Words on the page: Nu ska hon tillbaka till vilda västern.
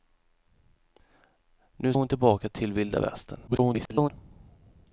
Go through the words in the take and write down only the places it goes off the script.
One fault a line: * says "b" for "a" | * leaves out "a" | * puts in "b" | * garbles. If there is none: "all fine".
* leaves out "ska"
* garbles